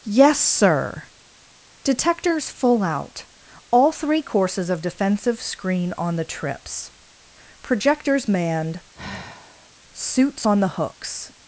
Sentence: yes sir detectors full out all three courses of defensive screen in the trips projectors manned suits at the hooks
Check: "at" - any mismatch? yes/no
yes